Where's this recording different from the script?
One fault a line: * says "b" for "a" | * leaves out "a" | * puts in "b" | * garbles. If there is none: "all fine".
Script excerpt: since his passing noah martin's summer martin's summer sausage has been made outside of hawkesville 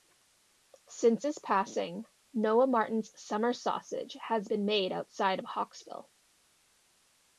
* leaves out "martin's summer"